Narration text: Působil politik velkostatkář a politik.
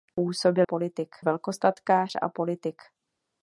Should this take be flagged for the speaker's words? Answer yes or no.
no